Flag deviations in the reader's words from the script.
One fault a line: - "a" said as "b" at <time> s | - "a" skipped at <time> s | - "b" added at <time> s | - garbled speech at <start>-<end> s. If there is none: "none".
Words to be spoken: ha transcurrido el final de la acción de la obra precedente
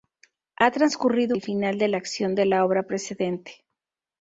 none